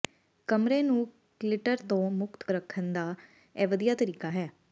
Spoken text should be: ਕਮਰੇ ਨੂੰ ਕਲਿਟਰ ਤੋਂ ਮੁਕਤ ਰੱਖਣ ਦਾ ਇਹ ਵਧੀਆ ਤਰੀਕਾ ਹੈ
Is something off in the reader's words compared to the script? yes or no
no